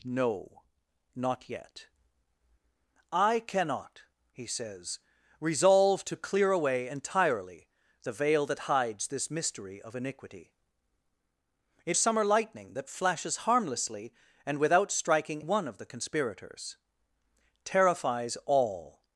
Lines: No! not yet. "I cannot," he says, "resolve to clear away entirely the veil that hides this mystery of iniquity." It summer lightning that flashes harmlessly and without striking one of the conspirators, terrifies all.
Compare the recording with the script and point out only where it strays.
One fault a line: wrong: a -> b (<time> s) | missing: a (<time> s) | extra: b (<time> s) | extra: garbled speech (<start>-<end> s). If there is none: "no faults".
no faults